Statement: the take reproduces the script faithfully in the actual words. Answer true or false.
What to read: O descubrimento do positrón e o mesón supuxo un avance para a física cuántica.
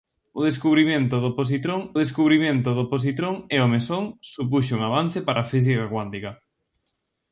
false